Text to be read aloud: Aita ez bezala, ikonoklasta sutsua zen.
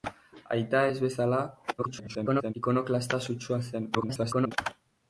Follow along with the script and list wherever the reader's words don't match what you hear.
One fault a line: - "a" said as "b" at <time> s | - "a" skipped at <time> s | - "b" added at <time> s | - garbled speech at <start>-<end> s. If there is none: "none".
- garbled speech at 1.8-2.5 s
- garbled speech at 3.9-4.5 s